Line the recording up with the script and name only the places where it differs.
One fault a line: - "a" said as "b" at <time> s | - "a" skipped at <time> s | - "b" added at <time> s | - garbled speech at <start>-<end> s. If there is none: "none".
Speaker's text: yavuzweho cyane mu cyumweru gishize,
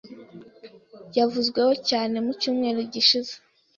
none